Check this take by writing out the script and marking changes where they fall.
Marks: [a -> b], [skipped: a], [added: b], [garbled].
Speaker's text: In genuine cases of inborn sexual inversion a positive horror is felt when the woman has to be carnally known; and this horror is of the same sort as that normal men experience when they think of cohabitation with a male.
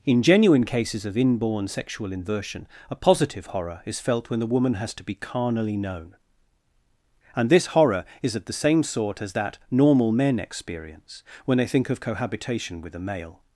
In genuine cases of inborn sexual inversion a positive horror is felt when the woman has to be carnally known; and this horror is of the same sort as that normal men experience when they think of cohabitation with a male.